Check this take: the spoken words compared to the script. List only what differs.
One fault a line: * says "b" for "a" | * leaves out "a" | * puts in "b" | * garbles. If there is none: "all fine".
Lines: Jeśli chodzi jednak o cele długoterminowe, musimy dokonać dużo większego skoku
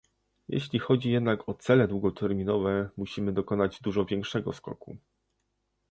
all fine